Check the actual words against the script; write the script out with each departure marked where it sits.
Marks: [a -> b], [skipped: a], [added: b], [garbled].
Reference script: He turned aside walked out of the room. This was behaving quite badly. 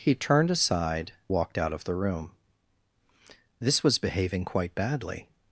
He turned aside walked out of the room. This was behaving quite badly.